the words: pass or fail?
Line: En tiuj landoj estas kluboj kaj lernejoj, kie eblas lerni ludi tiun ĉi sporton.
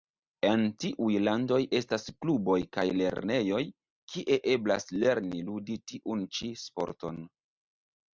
pass